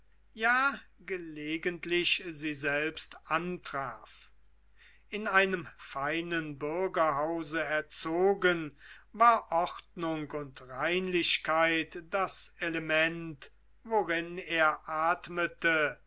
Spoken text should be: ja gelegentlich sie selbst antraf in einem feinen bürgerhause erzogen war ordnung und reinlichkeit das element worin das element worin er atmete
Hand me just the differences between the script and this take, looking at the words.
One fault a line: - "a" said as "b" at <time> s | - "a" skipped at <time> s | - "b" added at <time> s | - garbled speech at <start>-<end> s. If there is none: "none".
- "das element worin" skipped at 14.4 s